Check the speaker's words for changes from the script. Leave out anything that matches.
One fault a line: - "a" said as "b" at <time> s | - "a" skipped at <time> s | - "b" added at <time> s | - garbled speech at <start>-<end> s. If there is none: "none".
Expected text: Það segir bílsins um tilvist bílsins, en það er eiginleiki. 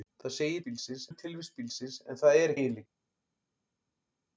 none